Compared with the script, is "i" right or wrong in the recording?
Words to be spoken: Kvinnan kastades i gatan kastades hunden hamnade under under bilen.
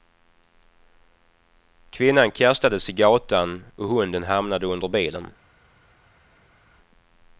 right